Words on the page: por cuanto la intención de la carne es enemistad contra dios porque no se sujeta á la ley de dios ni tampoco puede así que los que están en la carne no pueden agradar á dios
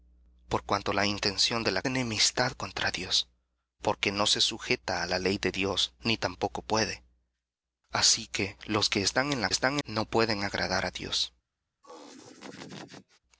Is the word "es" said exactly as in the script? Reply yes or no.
no